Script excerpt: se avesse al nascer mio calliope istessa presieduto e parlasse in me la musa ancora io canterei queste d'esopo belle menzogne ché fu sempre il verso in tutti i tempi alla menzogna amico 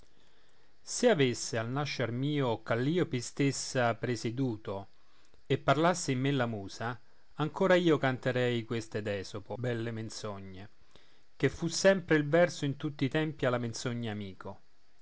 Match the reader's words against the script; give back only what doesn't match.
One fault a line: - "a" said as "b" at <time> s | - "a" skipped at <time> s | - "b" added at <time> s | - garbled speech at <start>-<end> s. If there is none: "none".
none